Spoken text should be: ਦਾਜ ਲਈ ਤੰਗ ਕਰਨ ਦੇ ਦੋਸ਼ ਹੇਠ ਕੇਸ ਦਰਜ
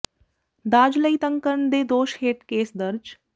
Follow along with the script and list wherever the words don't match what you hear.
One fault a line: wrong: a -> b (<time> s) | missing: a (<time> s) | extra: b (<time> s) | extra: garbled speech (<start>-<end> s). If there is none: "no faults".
no faults